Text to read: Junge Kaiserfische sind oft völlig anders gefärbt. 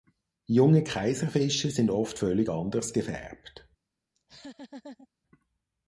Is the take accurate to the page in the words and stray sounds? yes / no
no